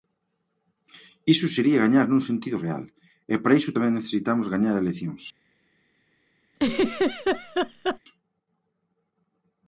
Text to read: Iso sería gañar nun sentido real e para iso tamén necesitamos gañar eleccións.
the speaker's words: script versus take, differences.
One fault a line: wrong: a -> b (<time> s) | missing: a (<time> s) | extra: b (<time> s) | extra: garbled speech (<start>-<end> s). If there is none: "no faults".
no faults